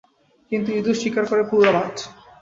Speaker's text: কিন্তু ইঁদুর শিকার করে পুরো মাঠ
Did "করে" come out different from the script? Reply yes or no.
no